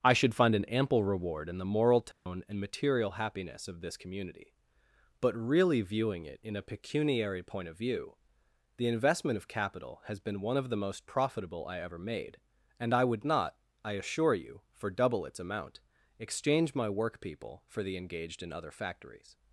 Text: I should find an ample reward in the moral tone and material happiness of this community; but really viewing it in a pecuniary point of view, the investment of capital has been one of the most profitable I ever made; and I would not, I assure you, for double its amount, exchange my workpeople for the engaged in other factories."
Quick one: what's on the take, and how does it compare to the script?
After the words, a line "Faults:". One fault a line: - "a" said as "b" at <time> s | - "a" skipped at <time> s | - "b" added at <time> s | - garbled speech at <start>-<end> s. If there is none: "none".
I should find an ample reward in the moral tone and material happiness of this community; but really viewing it in a pecuniary point of view, the investment of capital has been one of the most profitable I ever made; and I would not, I assure you, for double its amount, exchange my workpeople for the engaged in other factories."
Faults:
none